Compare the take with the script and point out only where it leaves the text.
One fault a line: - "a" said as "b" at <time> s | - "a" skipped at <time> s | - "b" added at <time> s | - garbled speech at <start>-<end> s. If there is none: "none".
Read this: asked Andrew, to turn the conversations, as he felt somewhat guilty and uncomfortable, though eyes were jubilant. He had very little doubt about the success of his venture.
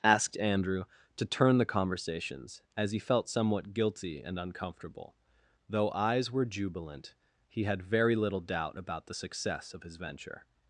none